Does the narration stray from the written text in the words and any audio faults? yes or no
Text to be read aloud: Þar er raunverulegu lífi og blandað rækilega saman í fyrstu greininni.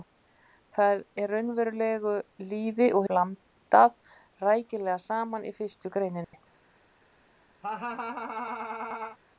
yes